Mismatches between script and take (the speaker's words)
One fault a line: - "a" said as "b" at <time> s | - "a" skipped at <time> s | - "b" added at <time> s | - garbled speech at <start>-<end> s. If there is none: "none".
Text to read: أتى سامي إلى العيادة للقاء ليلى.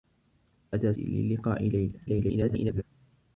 - "سامي إلى العيادة" skipped at 0.9 s
- garbled speech at 2.1-2.8 s